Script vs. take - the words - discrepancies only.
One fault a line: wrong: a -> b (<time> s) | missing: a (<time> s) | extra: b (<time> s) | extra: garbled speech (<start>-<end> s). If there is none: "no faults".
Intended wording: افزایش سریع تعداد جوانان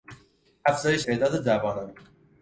missing: سریع (1.1 s)